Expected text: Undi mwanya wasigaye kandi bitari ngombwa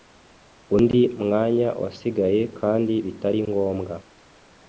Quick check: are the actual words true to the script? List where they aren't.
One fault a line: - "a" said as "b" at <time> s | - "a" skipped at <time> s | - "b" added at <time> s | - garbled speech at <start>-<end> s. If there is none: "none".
none